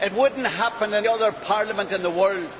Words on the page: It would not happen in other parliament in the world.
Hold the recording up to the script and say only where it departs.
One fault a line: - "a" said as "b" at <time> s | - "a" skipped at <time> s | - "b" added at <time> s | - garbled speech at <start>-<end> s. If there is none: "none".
none